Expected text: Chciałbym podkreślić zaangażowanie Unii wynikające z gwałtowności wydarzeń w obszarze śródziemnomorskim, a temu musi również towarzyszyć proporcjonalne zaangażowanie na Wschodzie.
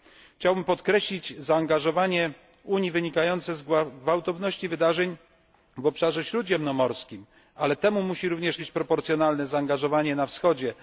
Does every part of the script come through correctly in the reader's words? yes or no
no